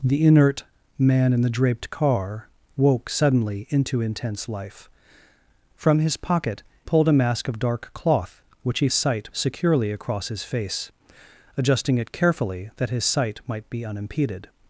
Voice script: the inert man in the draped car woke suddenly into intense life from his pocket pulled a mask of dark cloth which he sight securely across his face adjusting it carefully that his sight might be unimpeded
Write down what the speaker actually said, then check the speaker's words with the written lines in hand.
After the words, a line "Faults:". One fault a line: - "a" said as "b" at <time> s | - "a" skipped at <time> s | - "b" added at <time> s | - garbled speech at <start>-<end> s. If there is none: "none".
the inert man in the draped car woke suddenly into intense life from his pocket pulled a mask of dark cloth which he sight securely across his face adjusting it carefully that his sight might be unimpeded
Faults:
none